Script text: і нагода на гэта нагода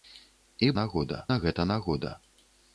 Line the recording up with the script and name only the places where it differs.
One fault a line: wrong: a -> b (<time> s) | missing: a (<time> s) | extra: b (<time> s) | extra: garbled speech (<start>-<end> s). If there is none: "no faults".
no faults